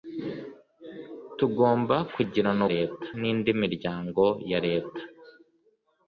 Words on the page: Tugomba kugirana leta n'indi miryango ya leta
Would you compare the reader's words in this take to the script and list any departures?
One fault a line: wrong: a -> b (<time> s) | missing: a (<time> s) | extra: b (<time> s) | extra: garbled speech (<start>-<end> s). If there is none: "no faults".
no faults